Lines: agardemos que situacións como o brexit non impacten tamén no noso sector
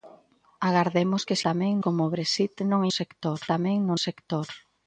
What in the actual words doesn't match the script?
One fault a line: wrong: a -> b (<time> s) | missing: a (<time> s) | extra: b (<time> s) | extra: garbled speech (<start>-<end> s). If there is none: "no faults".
wrong: situacións -> tamén (1.5 s)
wrong: impacten -> sector (3.0 s)
missing: noso (3.9 s)